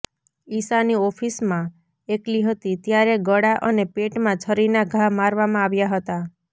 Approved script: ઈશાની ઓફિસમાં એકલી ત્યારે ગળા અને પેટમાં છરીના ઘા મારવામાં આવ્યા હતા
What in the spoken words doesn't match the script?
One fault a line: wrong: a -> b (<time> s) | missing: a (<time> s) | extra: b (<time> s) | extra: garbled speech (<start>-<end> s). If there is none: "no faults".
extra: હતી (2.5 s)